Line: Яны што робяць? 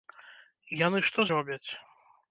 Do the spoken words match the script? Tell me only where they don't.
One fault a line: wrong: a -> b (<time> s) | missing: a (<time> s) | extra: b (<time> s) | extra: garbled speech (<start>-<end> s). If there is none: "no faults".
no faults